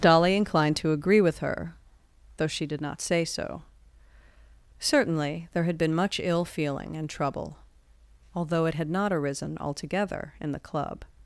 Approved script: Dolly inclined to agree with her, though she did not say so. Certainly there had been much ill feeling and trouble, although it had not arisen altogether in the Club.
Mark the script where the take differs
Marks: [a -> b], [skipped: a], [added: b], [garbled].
Dolly inclined to agree with her, though she did not say so. Certainly there had been much ill feeling and trouble, although it had not arisen altogether in the Club.